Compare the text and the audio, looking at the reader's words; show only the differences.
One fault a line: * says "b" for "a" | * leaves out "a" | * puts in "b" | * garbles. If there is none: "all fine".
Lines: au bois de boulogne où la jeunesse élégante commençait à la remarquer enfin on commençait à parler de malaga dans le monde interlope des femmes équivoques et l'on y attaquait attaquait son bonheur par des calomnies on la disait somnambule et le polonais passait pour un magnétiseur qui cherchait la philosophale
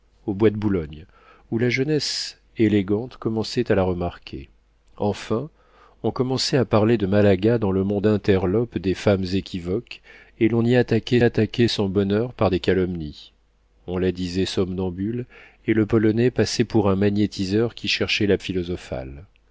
all fine